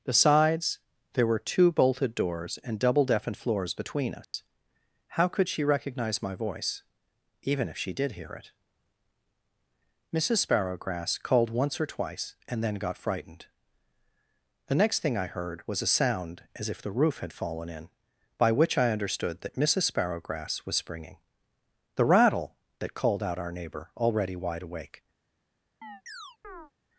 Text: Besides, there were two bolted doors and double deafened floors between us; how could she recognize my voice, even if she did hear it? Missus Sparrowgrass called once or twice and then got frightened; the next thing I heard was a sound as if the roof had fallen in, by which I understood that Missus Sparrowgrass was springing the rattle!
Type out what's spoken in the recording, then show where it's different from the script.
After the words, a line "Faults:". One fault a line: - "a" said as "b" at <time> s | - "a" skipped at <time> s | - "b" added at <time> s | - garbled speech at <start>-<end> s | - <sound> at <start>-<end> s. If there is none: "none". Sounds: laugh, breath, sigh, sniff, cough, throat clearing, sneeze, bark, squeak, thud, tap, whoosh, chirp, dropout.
Besides, there were two bolted doors and double deafened floors between us; how could she recognize my voice, even if she did hear it? Missus Sparrowgrass called once or twice and then got frightened; the next thing I heard was a sound as if the roof had fallen in, by which I understood that Missus Sparrowgrass was springing the rattle! That called out our neighbor, already wide awake
Faults:
- dropout at 4.2-4.3 s
- "That called out our neighbor already wide awake" added at 22.8 s
- chirp at 25.8-26.7 s